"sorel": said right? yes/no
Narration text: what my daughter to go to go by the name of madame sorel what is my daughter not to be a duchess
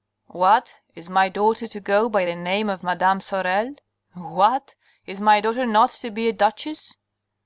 yes